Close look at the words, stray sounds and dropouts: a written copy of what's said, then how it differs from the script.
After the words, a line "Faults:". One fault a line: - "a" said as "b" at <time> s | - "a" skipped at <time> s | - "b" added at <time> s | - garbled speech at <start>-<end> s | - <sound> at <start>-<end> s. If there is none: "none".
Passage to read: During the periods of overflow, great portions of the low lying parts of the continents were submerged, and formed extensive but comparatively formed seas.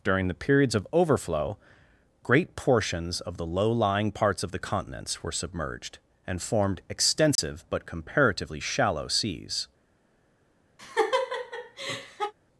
During the periods of overflow, great portions of the low lying parts of the continents were submerged, and formed extensive but comparatively shallow seas.
Faults:
- dropout at 7.4-7.4 s
- "formed" said as "shallow" at 8.6 s
- laugh at 10.8-12.3 s